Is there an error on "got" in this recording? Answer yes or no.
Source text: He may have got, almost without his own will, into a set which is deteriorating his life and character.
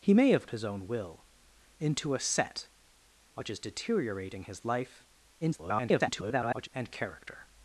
yes